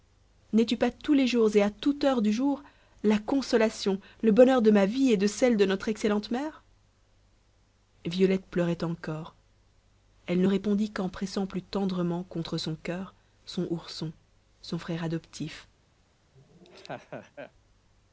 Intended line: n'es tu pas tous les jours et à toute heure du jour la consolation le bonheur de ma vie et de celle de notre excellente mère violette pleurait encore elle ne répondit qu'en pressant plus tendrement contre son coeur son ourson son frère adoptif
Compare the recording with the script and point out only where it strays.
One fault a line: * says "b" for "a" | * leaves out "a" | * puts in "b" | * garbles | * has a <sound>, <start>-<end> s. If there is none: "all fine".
* has a laugh, 16.4-17.5 s